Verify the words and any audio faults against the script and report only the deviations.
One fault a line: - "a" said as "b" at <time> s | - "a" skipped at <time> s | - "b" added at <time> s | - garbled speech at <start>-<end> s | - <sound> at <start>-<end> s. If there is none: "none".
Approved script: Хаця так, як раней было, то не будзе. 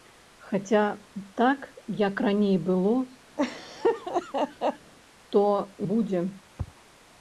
- laugh at 3.4-4.9 s
- "не" skipped at 5.5 s